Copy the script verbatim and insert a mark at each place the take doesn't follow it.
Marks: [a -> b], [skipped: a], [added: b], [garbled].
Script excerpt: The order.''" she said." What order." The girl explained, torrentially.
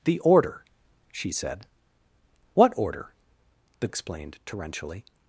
The order.''" she said." What order." The [skipped: girl] explained, torrentially.